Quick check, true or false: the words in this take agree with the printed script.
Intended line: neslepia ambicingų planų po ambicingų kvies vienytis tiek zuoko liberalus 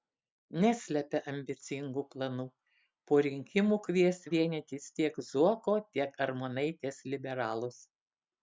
false